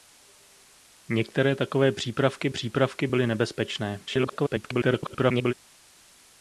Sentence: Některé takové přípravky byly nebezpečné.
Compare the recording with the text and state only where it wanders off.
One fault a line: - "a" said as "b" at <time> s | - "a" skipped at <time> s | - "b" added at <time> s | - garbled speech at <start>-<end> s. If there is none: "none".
- "přípravky" added at 2.5 s
- garbled speech at 4.1-5.5 s